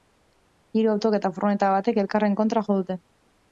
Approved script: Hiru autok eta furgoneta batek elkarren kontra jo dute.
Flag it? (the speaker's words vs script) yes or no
no